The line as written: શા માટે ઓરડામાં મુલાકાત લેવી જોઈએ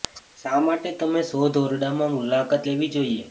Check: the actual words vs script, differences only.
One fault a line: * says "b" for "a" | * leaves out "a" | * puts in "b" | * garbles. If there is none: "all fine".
* puts in "તમે શોધ"